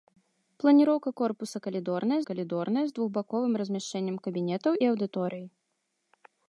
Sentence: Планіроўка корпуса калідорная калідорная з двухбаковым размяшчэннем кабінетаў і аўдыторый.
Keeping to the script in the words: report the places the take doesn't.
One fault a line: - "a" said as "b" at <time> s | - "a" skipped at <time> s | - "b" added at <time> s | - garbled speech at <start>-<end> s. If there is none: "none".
none